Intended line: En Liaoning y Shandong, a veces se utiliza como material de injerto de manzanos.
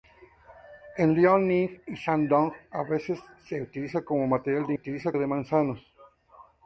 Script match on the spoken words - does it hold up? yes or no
no